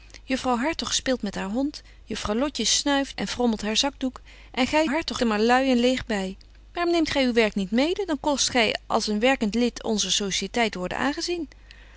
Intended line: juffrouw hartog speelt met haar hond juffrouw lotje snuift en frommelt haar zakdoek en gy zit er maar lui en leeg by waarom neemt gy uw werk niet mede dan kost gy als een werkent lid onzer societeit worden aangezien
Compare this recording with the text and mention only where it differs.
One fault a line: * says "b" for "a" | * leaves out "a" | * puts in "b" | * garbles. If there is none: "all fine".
* says "hartog" for "zit"